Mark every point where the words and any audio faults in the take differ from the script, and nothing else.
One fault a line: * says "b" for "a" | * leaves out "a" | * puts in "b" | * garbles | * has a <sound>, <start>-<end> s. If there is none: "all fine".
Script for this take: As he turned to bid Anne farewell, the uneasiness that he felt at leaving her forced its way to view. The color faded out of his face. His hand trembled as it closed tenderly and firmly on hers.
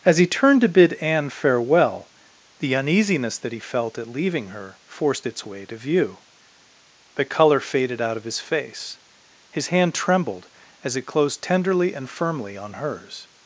all fine